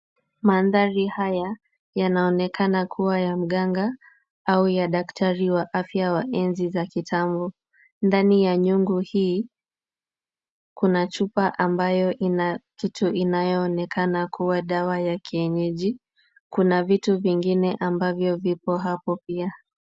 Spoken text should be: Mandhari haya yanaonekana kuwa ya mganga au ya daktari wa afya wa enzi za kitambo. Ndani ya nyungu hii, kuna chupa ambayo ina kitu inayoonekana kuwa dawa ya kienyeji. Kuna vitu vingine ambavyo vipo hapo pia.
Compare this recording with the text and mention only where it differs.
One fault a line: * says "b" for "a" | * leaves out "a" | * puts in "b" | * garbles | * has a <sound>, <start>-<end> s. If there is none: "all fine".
all fine